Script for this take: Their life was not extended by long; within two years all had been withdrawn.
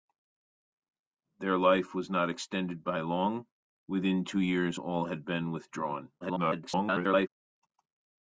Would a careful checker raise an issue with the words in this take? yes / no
yes